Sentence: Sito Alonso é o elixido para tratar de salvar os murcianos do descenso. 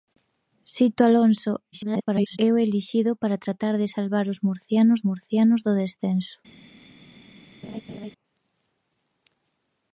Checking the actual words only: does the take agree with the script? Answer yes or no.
no